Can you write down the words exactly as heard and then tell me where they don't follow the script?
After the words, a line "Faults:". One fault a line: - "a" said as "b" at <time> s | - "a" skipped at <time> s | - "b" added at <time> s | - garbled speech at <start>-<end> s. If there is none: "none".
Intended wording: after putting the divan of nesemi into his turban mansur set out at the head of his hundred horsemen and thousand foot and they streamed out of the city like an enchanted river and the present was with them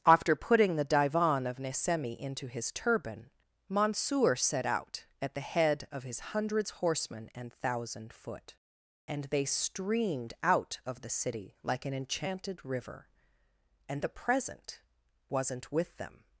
after putting the divan of nesemi into his turban mansur set out at the head of his hundreds horsemen and thousand foot and they streamed out of the city like an enchanted river and the present wasn't with them
Faults:
- "hundred" said as "hundreds" at 6.2 s
- "was" said as "wasn't" at 15.3 s